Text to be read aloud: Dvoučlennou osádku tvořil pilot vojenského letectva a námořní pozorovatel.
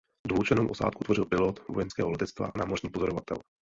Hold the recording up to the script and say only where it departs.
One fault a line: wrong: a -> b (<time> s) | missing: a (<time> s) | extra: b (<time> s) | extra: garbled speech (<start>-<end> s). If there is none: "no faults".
no faults